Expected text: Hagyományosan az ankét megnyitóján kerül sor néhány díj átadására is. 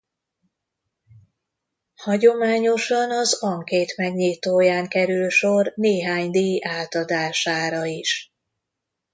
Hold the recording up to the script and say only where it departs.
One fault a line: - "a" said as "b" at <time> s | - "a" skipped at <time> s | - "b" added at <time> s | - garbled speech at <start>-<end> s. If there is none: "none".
none